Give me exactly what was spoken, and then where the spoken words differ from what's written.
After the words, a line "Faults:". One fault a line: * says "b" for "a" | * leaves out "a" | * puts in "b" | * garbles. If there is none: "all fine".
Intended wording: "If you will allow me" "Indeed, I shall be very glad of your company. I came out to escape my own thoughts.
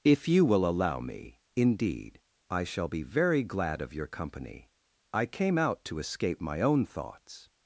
"If you will allow me" "Indeed, I shall be very glad of your company. I came out to escape my own thoughts.
Faults:
all fine